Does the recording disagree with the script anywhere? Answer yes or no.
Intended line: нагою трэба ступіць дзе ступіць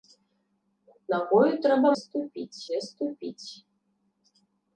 no